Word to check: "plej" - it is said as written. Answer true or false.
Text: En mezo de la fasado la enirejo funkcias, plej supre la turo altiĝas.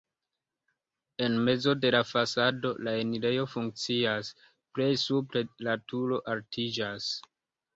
true